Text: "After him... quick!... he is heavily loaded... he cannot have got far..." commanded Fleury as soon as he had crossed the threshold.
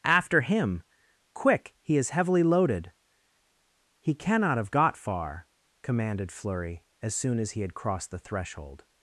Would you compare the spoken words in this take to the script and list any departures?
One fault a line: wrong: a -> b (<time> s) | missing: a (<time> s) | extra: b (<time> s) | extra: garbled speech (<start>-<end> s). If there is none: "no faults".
no faults